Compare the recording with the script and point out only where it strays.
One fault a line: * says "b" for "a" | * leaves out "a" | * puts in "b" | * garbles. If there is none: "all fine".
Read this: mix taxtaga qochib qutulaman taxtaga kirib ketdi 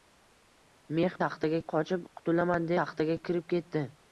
all fine